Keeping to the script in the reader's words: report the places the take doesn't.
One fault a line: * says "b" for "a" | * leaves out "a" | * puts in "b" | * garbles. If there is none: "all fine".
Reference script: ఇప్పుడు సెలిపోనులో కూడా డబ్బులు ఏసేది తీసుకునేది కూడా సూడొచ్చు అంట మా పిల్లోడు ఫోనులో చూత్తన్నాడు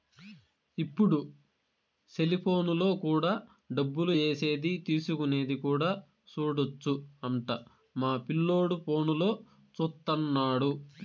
all fine